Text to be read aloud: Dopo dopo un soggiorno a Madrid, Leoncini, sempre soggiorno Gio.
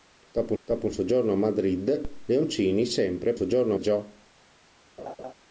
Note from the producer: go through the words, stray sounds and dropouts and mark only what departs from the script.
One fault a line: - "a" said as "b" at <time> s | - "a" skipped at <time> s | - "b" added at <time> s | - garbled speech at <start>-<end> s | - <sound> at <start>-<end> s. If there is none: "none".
- laugh at 5.0-5.3 s